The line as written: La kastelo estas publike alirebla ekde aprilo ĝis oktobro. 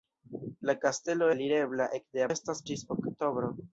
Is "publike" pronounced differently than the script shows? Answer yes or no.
yes